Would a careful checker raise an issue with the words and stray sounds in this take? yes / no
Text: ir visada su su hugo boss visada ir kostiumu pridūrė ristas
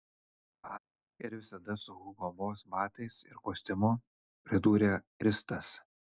yes